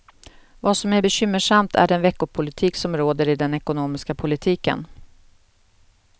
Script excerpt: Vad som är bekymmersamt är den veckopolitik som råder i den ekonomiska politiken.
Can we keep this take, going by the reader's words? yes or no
yes